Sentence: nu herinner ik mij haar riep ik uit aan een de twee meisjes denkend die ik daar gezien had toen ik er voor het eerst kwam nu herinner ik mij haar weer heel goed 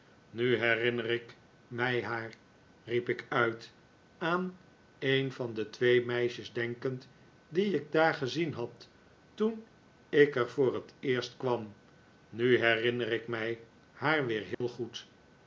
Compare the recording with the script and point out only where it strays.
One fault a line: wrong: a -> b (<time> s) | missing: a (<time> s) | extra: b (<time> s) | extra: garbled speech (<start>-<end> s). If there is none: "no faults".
extra: van (5.3 s)